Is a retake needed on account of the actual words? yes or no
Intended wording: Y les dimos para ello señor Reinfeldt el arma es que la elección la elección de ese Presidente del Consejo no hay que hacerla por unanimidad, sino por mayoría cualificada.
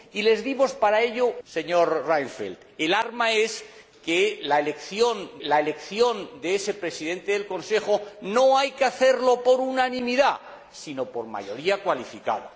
no